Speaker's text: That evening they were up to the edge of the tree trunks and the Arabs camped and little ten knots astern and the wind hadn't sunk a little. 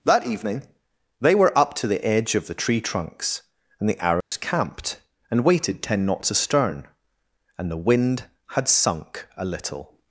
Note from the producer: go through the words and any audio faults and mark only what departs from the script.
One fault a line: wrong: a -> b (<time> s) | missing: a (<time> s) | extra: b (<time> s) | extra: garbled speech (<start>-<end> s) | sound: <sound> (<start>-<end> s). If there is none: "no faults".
sound: dropout (4.2-4.3 s)
wrong: little -> waited (5.5 s)
wrong: hadn't -> had (8.5 s)